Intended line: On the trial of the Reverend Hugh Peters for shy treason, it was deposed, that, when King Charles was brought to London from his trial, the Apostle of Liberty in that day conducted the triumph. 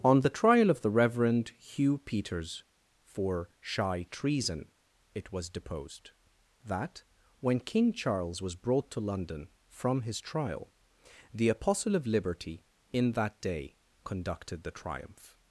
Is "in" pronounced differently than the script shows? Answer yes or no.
no